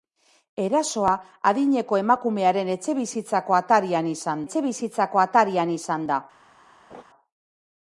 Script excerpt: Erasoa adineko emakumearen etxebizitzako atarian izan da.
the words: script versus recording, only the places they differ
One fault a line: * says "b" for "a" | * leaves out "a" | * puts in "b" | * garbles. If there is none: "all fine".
* puts in "etxebizitzako atarian izan"